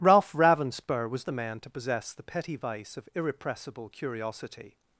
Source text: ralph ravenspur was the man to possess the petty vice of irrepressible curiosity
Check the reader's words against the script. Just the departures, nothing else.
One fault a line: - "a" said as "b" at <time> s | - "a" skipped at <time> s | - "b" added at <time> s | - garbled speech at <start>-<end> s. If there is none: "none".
none